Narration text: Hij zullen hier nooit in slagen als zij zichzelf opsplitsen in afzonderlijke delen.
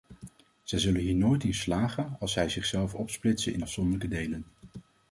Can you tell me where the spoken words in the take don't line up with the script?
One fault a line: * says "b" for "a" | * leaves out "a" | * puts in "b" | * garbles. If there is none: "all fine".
* says "Zij" for "Hij"